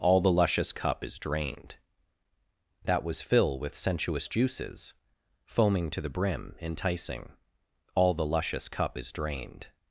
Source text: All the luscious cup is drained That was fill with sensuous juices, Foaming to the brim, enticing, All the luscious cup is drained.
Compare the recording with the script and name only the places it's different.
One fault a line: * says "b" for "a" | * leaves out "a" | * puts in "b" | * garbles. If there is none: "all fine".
all fine